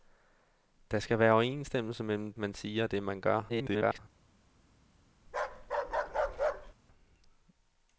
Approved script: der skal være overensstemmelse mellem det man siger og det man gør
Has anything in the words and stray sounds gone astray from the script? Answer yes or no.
yes